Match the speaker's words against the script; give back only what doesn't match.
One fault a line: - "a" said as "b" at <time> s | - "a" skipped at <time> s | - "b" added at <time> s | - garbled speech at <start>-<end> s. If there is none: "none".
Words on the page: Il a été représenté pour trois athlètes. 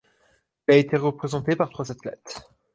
- "pour" said as "par" at 1.5 s